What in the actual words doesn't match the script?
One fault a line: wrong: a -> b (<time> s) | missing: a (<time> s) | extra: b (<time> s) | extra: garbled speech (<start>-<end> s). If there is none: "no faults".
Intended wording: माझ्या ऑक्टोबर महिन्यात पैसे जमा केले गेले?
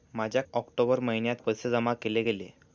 no faults